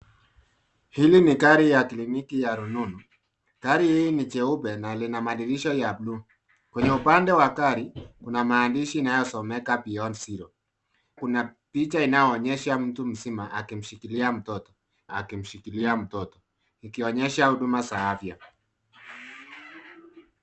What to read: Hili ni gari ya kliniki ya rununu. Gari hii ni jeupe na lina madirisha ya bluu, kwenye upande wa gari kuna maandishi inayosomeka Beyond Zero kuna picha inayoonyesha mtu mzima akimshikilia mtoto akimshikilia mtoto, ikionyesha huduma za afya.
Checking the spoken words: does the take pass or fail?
pass